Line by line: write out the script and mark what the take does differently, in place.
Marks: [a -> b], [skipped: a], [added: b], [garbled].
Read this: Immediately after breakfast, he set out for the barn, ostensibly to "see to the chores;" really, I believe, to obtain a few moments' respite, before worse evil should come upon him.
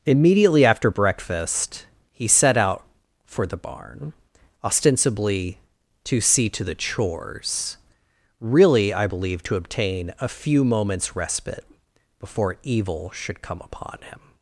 Immediately after breakfast, he set out for the barn, ostensibly to "see to the chores;" really, I believe, to obtain a few moments' respite, before [skipped: worse] evil should come upon him.